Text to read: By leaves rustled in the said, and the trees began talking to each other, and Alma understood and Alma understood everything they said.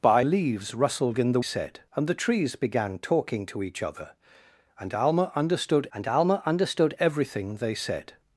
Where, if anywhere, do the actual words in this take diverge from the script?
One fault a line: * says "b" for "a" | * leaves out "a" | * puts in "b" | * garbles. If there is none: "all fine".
all fine